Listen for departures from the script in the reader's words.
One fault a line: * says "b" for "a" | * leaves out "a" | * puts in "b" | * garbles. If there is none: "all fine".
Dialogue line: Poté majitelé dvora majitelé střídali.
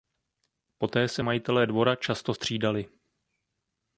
* puts in "se"
* says "často" for "majitelé"